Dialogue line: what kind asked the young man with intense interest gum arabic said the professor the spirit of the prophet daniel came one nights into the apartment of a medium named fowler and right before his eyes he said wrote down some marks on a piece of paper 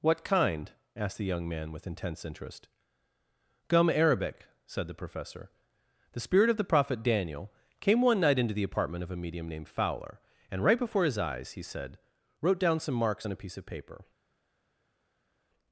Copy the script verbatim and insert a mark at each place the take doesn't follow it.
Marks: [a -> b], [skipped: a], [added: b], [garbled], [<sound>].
what kind asked the young man with intense interest gum arabic said the professor the spirit of the prophet daniel came one [nights -> night] into the apartment of a medium named fowler and right before his eyes he said wrote down some marks on a piece of paper